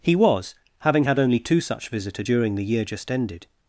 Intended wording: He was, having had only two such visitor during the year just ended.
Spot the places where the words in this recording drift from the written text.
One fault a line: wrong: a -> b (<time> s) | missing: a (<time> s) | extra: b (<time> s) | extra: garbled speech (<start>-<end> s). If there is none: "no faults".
no faults